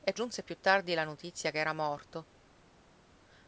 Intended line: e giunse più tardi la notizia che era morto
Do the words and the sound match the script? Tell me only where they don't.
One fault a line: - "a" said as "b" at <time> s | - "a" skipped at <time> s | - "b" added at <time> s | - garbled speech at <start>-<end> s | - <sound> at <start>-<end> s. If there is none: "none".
none